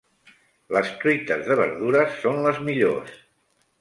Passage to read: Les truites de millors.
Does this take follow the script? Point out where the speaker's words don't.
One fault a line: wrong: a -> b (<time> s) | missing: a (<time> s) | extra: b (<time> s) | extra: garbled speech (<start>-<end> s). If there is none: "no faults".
extra: verdures són les (1.6 s)